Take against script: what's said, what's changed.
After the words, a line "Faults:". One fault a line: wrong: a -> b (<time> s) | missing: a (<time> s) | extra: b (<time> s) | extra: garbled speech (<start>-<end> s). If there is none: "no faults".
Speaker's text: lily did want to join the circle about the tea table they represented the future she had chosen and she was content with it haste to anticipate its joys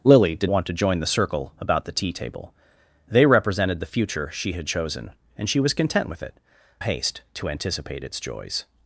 lily did want to join the circle about the tea table they represented the future she had chosen and she was content with it haste to anticipate its joys
Faults:
no faults